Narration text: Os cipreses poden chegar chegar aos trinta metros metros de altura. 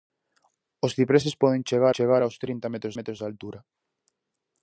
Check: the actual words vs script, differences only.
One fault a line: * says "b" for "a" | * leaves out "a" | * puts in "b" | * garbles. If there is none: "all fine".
all fine